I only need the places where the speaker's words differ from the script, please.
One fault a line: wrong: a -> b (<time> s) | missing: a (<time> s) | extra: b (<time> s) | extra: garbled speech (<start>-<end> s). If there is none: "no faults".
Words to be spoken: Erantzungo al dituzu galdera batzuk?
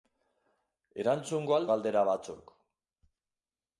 missing: dituzu (1.7 s)